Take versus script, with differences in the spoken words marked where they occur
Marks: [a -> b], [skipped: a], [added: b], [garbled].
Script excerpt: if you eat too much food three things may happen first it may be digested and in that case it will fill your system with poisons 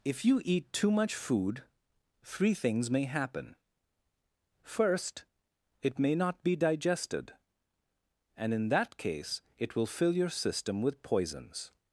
if you eat too much food three things may happen first it may [added: not] be digested and in that case it will fill your system with poisons